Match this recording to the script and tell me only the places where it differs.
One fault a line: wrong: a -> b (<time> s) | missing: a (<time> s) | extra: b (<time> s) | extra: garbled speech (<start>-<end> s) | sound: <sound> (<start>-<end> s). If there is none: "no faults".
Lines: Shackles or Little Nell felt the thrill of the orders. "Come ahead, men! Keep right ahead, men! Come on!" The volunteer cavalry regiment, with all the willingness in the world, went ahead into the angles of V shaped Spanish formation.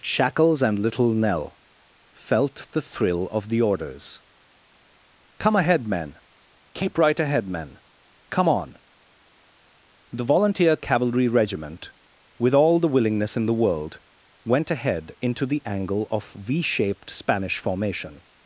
wrong: or -> and (0.6 s)
wrong: angles -> angle (15.7 s)